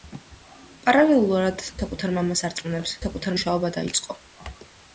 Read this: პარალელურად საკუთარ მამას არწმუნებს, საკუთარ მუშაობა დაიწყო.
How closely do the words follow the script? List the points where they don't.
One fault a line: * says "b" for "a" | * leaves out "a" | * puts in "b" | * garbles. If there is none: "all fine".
all fine